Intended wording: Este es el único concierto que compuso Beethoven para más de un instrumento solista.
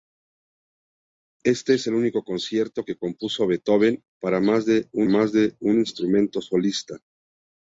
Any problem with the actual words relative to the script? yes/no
yes